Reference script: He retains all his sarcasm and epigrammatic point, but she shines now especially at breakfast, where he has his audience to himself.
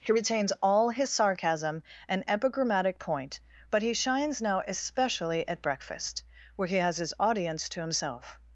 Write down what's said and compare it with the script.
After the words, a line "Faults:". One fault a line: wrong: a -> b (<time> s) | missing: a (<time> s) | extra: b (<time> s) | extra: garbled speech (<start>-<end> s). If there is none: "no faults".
He retains all his sarcasm and epigrammatic point, but he shines now especially at breakfast, where he has his audience to himself.
Faults:
wrong: she -> he (3.8 s)